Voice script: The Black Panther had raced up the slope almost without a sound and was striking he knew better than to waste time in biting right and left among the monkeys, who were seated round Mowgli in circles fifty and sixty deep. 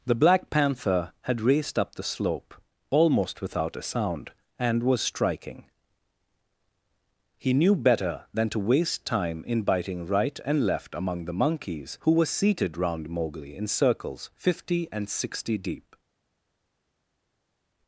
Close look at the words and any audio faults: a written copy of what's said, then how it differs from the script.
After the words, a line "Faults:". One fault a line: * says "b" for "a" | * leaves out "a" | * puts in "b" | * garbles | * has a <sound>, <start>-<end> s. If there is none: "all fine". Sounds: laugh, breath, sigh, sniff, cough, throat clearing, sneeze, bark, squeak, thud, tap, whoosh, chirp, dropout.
The Black Panther had raced up the slope almost without a sound and was striking he knew better than to waste time in biting right and left among the monkeys, who were seated round Mowgli in circles fifty and sixty deep.
Faults:
all fine